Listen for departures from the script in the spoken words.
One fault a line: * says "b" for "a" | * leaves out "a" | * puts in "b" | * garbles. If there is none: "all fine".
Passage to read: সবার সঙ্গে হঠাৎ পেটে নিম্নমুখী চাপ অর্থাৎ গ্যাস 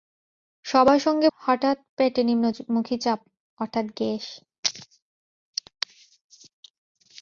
all fine